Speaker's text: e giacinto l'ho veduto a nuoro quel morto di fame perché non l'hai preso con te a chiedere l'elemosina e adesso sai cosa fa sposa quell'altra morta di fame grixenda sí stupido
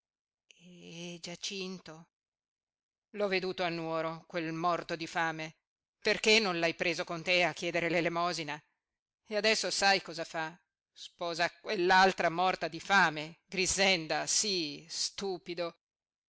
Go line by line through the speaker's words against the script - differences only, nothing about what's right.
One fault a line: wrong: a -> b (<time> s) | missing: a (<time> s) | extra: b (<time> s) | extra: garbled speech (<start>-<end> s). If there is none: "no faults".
no faults